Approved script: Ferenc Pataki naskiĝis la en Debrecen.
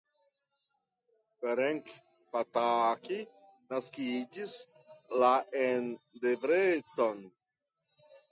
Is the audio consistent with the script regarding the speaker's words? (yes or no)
yes